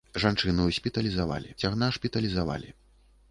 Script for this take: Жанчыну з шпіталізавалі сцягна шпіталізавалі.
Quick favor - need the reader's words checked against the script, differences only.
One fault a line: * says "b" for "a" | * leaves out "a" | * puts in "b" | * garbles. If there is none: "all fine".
all fine